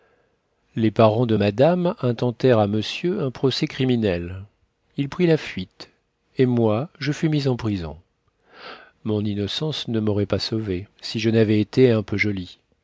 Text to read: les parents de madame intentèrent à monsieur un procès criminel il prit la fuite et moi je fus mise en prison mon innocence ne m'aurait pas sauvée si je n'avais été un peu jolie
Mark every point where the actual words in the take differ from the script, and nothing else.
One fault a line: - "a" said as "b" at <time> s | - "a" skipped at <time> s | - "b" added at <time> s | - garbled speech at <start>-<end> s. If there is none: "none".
none